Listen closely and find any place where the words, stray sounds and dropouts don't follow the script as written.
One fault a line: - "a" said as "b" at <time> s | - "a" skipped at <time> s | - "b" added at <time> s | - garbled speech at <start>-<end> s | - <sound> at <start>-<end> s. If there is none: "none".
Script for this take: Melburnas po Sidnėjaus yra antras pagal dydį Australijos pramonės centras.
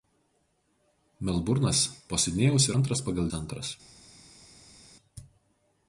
- "yra" skipped at 2.7 s
- "dydį Australijos pramonės" skipped at 3.3 s